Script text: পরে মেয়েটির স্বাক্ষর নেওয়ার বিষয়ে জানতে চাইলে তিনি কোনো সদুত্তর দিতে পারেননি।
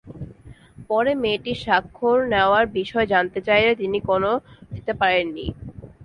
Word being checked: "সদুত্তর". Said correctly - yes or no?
no